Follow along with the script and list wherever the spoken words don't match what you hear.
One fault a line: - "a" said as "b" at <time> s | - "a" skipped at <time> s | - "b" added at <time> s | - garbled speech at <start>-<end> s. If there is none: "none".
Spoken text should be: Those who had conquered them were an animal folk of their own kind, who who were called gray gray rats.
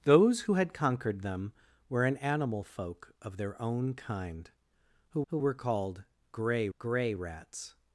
none